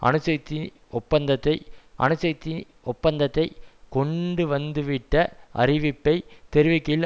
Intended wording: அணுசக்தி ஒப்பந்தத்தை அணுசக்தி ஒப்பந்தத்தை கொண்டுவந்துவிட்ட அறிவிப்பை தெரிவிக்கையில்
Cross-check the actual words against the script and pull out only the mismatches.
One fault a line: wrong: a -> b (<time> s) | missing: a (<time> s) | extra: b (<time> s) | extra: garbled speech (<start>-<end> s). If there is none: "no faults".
no faults